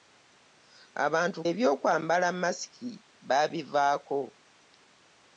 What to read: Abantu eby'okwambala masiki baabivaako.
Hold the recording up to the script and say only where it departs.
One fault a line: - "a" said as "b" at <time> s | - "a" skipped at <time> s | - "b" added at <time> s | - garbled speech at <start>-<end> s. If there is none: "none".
none